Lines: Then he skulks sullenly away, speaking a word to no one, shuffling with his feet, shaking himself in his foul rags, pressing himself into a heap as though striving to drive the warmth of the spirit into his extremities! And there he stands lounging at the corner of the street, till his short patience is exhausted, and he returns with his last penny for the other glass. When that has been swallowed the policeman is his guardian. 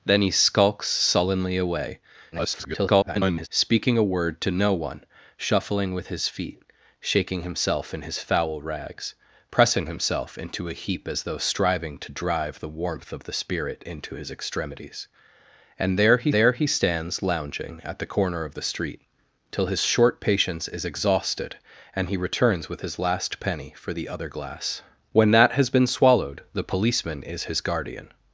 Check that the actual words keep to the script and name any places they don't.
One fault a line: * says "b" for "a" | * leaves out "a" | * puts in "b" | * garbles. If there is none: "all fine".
* garbles
* puts in "there he"